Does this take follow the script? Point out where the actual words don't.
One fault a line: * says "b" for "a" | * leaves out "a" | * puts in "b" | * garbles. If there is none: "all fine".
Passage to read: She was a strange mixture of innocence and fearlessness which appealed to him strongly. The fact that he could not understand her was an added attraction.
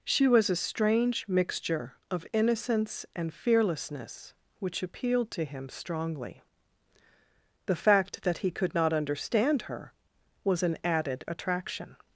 all fine